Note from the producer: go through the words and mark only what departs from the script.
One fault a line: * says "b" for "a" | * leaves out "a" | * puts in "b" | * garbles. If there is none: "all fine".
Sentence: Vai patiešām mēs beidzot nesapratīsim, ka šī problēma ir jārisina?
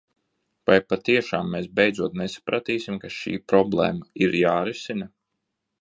all fine